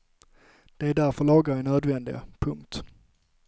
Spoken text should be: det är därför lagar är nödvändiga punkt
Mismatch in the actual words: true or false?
false